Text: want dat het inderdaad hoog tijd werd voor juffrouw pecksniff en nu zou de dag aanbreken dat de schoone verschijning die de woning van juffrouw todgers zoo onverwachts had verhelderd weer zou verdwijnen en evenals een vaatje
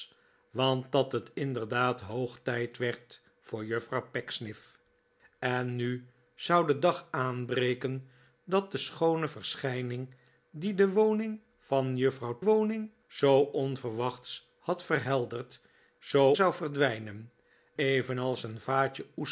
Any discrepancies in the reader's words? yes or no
yes